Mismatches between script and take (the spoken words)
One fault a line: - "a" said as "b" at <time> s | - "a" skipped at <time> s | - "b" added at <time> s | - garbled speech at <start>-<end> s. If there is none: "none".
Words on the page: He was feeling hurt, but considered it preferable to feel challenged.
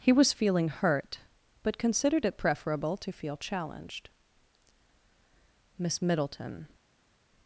- "Miss Middleton" added at 5.8 s